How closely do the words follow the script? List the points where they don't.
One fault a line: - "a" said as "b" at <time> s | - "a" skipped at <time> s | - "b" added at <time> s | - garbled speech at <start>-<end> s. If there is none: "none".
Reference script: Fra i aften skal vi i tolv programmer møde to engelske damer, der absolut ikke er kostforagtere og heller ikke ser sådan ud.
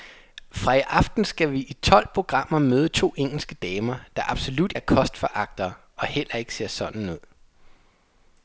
- "ikke" skipped at 4.7 s